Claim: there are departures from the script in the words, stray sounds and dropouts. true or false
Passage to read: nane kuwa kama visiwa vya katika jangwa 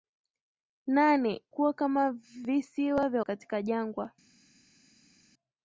false